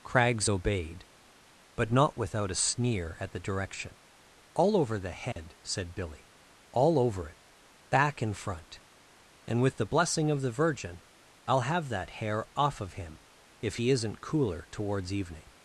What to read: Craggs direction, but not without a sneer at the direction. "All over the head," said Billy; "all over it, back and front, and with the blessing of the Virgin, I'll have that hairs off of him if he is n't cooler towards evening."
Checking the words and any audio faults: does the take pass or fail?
fail